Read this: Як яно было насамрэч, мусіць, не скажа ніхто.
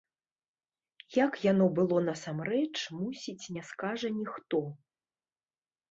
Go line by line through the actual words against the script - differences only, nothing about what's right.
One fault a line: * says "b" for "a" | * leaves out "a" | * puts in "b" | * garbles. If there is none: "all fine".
all fine